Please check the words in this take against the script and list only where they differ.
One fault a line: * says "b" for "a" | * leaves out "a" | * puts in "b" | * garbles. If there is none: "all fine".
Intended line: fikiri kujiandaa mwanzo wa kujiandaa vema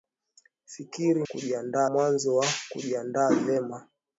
all fine